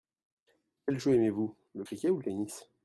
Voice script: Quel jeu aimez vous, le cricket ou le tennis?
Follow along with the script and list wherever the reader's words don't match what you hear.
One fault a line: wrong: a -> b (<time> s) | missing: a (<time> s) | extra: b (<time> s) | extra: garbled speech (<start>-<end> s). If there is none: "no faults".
no faults